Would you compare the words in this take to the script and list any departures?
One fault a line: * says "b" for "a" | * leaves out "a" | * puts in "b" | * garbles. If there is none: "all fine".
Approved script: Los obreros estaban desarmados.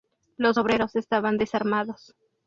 all fine